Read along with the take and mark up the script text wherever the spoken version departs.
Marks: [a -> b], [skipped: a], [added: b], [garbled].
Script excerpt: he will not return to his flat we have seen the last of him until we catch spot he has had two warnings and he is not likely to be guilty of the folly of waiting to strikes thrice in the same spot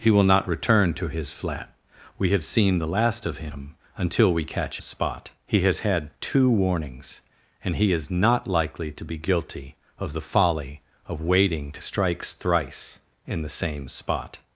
he will not return to his flat we have seen the last of him until we catch spot he has had two warnings and he is not likely to be guilty of the folly of waiting to strikes thrice in the same spot